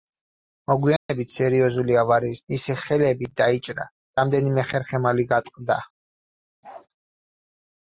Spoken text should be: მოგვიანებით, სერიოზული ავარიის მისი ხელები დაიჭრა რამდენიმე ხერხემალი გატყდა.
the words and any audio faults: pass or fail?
fail